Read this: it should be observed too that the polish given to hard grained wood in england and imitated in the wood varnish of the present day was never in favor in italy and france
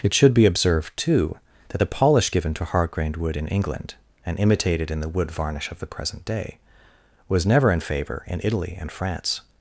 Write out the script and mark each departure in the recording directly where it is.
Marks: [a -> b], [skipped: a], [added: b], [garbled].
it should be observed too that the polish given to hard grained wood in england and imitated in the wood varnish of the present day was never in favor in italy and france